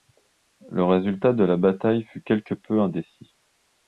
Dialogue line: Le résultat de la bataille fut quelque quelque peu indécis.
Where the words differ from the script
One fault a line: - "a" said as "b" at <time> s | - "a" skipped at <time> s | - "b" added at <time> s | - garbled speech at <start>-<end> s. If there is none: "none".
- "quelque" skipped at 2.5 s